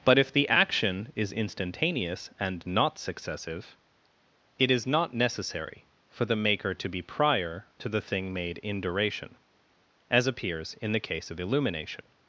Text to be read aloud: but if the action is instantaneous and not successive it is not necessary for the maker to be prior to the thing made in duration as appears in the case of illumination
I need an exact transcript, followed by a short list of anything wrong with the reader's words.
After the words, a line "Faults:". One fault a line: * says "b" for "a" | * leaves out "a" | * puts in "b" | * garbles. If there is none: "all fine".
but if the action is instantaneous and not successive it is not necessary for the maker to be prior to the thing made in duration as appears in the case of illumination
Faults:
all fine